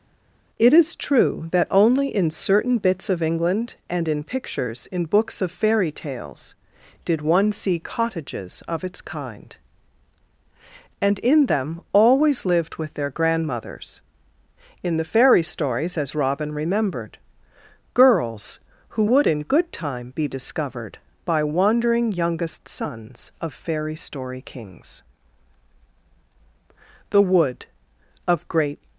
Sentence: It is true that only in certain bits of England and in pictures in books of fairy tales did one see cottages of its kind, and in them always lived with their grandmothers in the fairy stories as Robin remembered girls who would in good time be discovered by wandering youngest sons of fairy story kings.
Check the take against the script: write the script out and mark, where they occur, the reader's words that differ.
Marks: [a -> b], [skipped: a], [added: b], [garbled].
It is true that only in certain bits of England and in pictures in books of fairy tales did one see cottages of its kind, and in them always lived with their grandmothers in the fairy stories as Robin remembered girls who would in good time be discovered by wandering youngest sons of fairy story kings. [added: The wood of great]